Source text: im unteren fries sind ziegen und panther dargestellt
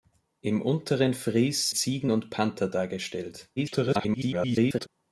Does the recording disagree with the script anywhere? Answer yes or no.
yes